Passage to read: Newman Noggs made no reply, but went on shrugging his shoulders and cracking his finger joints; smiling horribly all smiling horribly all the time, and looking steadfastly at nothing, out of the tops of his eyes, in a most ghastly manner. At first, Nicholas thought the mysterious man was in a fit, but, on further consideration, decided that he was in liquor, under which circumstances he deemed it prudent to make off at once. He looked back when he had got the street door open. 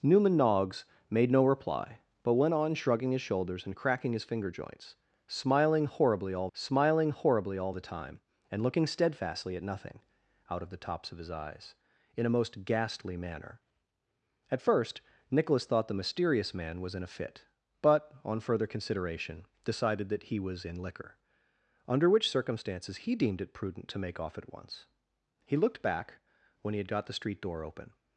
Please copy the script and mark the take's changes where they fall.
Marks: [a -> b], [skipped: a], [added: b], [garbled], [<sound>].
Newman Noggs made no reply, but went on shrugging his shoulders and cracking his finger joints; smiling horribly all smiling horribly all the time, and looking steadfastly at nothing, out of the tops of his eyes, in a most ghastly manner. At first, Nicholas thought the mysterious man was in a fit, but, on further consideration, decided that he was in liquor, under which circumstances he deemed it prudent to make off at once. He looked back when he had got the street door open.